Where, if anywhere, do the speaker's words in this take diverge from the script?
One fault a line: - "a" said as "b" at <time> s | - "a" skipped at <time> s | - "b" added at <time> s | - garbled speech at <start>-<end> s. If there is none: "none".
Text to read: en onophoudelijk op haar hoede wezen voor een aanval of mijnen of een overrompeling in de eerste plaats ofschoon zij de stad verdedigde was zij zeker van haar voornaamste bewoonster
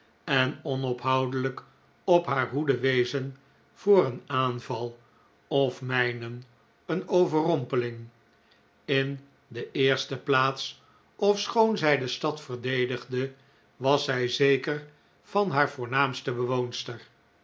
- "of" skipped at 6.4 s